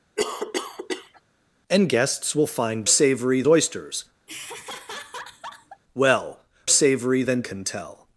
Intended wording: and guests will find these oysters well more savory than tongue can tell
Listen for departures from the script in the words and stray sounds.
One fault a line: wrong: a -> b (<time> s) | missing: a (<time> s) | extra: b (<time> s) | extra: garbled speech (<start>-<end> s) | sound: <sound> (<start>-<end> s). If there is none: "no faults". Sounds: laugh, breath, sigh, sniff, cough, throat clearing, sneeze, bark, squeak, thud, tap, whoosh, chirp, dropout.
sound: cough (0.2-1.2 s)
wrong: these -> savory (2.9 s)
sound: laugh (4.3-5.8 s)
missing: more (6.4 s)
missing: tongue (7.4 s)